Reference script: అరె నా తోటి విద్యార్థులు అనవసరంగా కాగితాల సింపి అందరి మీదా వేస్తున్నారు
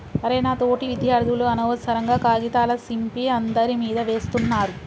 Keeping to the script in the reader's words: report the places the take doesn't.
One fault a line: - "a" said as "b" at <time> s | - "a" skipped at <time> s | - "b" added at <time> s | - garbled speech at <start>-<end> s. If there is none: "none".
none